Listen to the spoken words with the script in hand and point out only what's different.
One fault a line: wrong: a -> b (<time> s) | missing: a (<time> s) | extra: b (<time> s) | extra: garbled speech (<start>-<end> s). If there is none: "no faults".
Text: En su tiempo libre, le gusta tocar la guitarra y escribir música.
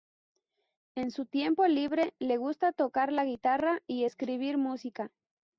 no faults